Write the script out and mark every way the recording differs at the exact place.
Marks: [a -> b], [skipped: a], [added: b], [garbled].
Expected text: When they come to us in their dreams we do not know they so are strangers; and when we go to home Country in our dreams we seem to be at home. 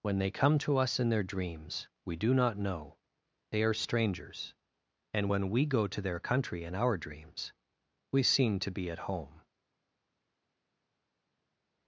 When they come to us in their dreams we do not know they [skipped: so] are strangers; and when we go to [home -> their] Country in our dreams we seem to be at home.